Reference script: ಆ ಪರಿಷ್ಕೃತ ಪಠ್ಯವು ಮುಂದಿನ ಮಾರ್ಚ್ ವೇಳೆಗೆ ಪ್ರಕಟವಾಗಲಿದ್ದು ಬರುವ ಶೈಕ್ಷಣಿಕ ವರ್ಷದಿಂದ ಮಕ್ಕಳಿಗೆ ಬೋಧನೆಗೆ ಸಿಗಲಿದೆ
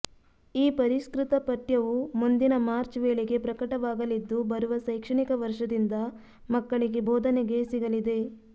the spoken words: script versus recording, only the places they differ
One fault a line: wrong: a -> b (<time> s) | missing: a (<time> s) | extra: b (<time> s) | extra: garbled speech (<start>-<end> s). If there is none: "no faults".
wrong: ಆ -> ಈ (0.6 s)